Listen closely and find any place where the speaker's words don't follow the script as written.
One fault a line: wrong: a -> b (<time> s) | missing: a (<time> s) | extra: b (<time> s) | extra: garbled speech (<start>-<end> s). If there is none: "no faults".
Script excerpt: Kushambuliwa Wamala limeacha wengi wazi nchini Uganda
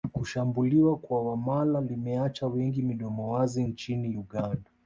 extra: kwa (1.0 s)
extra: midomo (2.8 s)